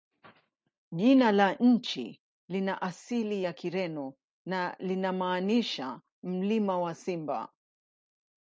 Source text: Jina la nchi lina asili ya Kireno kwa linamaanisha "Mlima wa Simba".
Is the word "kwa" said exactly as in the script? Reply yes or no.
no